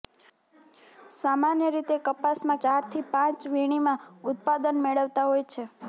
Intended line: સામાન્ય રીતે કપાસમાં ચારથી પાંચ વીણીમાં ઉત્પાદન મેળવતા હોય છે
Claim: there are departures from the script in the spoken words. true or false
false